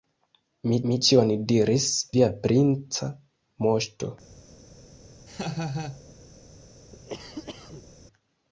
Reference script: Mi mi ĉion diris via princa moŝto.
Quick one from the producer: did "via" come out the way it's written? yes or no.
yes